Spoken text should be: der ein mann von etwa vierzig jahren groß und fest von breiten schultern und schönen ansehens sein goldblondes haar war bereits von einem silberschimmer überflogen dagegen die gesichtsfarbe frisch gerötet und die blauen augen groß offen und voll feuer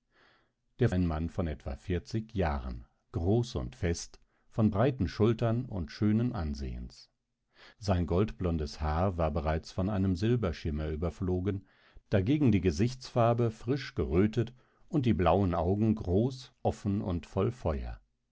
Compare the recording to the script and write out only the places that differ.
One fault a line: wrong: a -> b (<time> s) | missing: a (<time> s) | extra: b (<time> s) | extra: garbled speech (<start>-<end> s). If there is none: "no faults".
no faults